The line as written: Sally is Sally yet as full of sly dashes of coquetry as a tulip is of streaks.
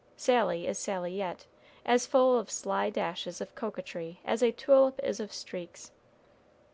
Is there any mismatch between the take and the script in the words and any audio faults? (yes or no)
no